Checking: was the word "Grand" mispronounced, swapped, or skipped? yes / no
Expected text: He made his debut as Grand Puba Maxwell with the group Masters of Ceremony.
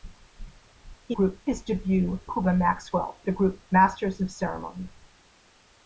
yes